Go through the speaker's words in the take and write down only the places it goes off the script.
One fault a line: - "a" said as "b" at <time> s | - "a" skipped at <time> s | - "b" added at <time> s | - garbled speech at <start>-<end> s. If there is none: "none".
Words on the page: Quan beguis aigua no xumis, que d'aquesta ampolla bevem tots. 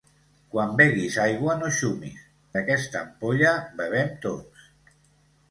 - "que" skipped at 2.2 s